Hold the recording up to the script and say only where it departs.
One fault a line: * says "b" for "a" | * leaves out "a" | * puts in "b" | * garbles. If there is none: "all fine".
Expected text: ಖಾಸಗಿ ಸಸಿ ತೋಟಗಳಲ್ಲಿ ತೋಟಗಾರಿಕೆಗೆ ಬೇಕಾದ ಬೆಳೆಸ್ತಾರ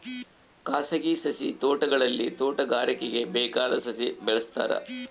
* puts in "ಸಸಿ"